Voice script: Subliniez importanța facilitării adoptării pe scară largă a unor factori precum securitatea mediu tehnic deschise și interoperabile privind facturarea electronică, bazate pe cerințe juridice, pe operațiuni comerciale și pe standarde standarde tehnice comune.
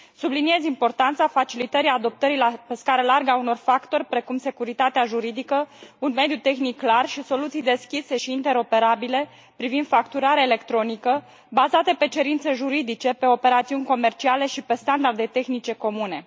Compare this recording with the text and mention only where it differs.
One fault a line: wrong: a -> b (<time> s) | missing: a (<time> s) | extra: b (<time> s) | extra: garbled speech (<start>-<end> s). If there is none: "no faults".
extra: juridică un (5.0 s)
extra: clar și soluții (6.8 s)
missing: standarde (15.3 s)